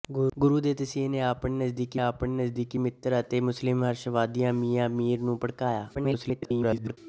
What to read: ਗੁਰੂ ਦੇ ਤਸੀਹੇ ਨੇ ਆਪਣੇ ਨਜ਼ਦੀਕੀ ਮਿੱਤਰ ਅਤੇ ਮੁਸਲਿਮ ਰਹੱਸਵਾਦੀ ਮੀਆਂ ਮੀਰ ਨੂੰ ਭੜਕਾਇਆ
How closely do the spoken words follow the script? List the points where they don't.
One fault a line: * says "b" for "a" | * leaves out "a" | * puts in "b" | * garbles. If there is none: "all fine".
* puts in "ਆਪਣੇ ਨਜ਼ਦੀਕੀ"
* garbles